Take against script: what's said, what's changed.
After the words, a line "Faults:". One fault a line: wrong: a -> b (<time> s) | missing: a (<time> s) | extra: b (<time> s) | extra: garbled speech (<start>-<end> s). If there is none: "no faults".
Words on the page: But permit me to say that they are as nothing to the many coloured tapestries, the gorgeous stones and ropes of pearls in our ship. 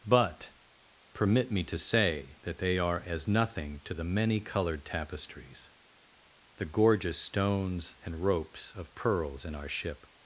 But permit me to say that they are as nothing to the many coloured tapestries, the gorgeous stones and ropes of pearls in our ship.
Faults:
no faults